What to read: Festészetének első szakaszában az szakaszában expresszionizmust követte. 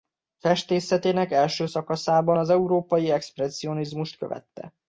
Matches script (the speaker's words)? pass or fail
fail